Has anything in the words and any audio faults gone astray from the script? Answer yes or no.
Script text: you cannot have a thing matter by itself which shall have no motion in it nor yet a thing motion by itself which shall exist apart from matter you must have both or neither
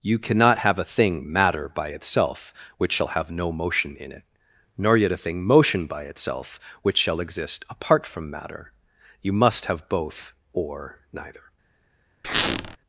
yes